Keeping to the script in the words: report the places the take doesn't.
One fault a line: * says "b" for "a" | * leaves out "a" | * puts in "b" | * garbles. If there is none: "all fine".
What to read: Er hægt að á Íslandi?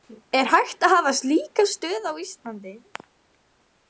* puts in "hafa slíka stöð"